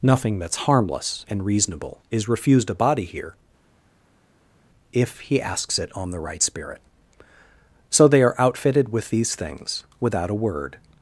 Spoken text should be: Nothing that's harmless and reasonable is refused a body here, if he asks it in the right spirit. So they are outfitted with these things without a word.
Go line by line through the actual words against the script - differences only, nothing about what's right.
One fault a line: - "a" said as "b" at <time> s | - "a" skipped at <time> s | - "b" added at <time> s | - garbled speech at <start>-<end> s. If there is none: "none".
- "in" said as "on" at 5.9 s